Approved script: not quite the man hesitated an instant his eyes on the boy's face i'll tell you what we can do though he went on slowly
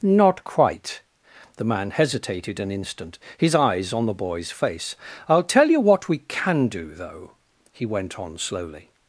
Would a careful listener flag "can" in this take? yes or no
no